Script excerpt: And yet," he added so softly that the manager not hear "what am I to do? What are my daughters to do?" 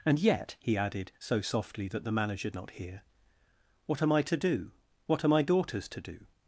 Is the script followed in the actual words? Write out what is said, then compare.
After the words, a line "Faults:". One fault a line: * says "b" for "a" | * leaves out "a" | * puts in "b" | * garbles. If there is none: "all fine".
And yet," he added so softly that the manager not hear "what am I to do? What are my daughters to do?"
Faults:
all fine